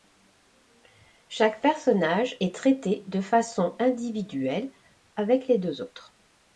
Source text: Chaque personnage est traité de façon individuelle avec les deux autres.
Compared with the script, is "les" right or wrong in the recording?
right